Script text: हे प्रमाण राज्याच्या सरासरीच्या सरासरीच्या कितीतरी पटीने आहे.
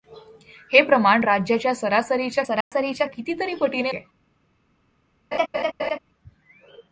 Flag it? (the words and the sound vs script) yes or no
yes